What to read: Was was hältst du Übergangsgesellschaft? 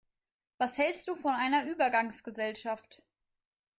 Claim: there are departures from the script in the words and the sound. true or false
true